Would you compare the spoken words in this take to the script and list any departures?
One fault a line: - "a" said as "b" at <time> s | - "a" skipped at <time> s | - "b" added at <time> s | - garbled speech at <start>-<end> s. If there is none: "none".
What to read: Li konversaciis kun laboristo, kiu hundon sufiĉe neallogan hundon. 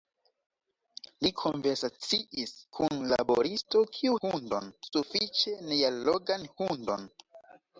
none